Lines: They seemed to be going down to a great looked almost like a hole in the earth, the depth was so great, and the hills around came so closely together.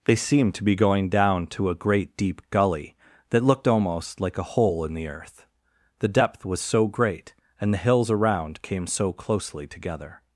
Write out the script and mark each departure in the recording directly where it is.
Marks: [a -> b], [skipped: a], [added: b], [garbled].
They seemed to be going down to a great [added: deep gully that] looked almost like a hole in the earth, the depth was so great, and the hills around came so closely together.